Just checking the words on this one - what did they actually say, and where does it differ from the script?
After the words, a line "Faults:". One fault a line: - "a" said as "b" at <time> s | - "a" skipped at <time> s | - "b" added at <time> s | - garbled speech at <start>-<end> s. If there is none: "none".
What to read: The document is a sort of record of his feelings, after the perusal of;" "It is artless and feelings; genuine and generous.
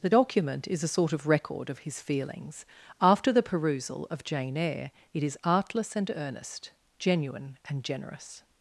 The document is a sort of record of his feelings, after the perusal of "Jane Eyre;" it is artless and earnest; genuine and generous.
Faults:
- "Jane Eyre" added at 4.2 s
- "feelings" said as "earnest" at 6.1 s